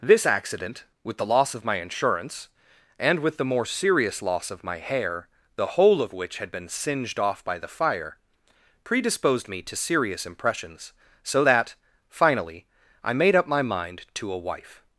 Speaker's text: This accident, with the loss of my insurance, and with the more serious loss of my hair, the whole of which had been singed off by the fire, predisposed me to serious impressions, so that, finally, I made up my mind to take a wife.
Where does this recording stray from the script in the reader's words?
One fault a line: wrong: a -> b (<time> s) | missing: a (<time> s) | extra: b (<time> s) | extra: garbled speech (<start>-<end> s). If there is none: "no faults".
missing: take (14.3 s)